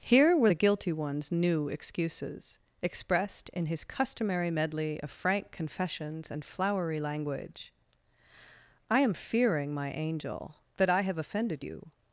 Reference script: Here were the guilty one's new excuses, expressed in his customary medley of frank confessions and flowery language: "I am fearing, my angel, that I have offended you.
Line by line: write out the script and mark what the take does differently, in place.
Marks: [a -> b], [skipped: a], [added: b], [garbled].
Here were the guilty one's new excuses, expressed in his customary medley of frank confessions and flowery language: "I am fearing, my angel, that I have offended you.